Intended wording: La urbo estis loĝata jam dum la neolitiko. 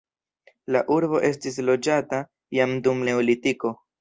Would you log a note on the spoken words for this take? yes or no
yes